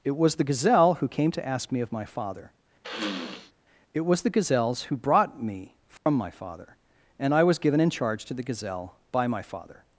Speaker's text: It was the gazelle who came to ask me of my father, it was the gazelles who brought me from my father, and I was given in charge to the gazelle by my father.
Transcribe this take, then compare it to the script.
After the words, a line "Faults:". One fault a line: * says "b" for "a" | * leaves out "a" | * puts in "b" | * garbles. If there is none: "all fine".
It was the gazelle who came to ask me of my father, it was the gazelles who brought me from my father, and I was given in charge to the gazelle by my father.
Faults:
all fine